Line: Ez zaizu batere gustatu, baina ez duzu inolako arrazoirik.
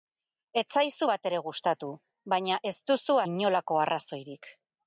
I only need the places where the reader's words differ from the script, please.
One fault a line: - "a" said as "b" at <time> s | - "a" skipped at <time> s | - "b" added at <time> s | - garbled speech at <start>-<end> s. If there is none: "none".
none